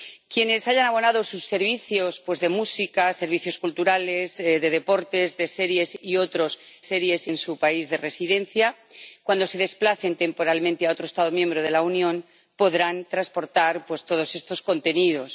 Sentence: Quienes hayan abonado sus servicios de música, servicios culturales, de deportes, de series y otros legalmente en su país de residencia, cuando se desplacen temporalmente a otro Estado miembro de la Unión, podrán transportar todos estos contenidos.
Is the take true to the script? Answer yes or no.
no